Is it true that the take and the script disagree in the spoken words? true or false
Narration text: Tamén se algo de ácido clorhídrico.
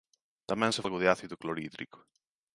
false